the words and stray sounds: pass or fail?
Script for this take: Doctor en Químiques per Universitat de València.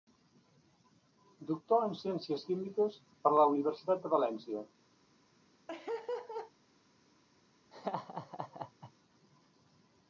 fail